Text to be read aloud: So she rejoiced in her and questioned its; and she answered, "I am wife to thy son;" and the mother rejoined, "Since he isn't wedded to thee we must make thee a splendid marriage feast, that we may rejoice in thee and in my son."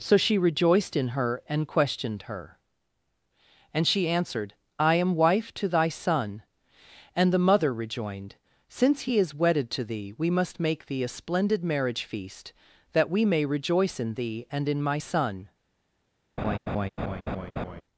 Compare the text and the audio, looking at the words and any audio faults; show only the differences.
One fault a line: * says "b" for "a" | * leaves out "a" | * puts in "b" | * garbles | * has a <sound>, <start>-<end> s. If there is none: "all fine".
* says "her" for "its"
* says "is" for "isn't"
* has a laugh, 16.4-17.8 s